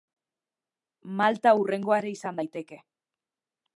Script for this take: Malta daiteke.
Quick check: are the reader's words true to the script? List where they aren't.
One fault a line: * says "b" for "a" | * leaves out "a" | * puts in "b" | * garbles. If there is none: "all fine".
* puts in "hurrengoa ere izan"